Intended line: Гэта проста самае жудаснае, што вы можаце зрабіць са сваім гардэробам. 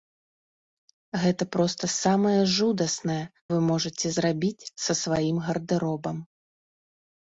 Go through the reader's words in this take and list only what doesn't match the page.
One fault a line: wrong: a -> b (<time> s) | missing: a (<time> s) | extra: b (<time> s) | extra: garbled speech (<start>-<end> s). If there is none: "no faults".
missing: што (3.2 s)